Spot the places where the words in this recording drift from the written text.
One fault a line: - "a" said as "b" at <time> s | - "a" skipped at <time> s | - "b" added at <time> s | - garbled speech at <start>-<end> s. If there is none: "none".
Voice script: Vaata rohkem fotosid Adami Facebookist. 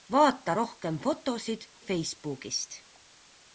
- "Adami" skipped at 1.7 s